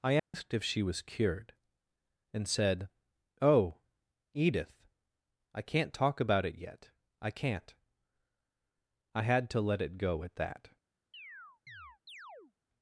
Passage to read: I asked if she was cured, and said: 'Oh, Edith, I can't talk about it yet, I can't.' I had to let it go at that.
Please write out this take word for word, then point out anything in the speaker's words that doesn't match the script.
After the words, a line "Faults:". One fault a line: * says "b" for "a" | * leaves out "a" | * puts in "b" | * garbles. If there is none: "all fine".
I asked if she was cured, and said: 'Oh, Edith, I can't talk about it yet, I can't.' I had to let it go at that.
Faults:
all fine